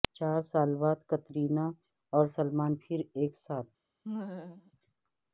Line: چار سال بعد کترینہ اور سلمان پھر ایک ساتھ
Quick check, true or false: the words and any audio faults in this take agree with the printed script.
false